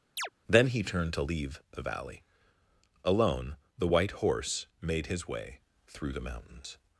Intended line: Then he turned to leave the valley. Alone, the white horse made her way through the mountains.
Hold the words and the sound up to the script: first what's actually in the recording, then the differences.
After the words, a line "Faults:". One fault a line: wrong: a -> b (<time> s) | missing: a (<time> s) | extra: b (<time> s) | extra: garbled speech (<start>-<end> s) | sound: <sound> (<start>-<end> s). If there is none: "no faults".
Then he turned to leave the valley. Alone, the white horse made his way through the mountains.
Faults:
sound: chirp (0.2-0.3 s)
wrong: her -> his (5.1 s)